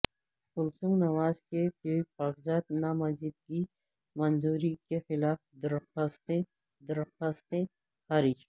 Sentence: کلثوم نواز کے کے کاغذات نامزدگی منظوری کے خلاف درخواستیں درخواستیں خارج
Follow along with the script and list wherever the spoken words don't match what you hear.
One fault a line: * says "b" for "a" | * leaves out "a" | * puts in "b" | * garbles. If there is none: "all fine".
all fine